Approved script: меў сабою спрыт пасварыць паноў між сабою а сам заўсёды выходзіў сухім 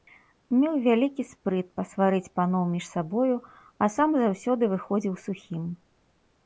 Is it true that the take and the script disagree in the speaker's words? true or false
true